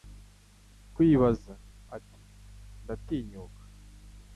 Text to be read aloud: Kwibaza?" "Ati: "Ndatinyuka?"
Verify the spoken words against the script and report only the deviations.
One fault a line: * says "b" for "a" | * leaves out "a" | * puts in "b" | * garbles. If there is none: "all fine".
all fine